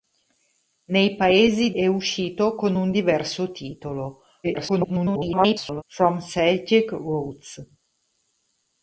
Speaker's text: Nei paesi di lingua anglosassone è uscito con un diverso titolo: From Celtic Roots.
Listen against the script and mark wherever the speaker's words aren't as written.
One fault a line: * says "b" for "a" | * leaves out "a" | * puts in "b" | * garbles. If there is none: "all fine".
* leaves out "di lingua anglosassone"
* garbles